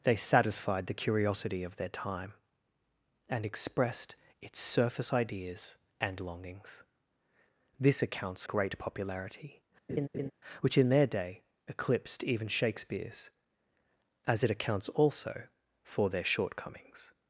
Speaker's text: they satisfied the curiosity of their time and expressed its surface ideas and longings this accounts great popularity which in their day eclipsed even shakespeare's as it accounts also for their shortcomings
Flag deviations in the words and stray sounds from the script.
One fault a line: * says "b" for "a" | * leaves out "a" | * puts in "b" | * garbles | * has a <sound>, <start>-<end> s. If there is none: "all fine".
* has a laugh, 9.9-10.3 s